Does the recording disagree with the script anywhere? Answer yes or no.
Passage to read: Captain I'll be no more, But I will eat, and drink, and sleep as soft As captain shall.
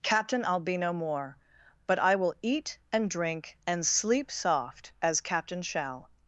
yes